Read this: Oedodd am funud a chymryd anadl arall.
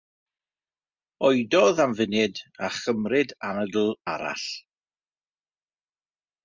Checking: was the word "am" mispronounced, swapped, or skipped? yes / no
no